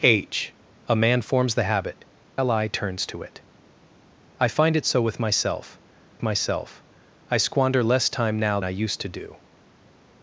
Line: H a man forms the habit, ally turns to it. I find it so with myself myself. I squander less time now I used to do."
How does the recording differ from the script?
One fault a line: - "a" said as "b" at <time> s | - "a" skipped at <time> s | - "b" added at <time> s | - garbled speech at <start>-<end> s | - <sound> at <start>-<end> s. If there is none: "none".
none